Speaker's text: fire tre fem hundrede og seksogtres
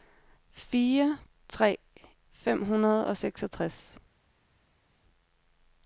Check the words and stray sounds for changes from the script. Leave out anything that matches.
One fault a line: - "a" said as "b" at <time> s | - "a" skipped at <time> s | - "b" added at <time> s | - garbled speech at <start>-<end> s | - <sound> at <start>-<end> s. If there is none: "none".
none